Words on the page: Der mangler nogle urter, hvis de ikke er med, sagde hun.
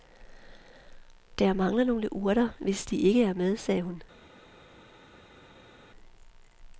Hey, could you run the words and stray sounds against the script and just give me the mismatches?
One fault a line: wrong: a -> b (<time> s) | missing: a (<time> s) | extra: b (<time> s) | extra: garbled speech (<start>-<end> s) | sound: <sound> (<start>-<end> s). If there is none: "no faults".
no faults